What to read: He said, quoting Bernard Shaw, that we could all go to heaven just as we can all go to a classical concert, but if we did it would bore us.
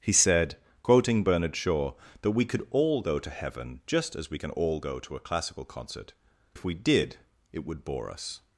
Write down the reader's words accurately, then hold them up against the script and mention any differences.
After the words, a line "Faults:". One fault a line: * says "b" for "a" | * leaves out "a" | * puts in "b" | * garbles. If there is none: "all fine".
He said, quoting Bernard Shaw, that we could all go to heaven just as we can all go to a classical concert, if we did it would bore us.
Faults:
* leaves out "but"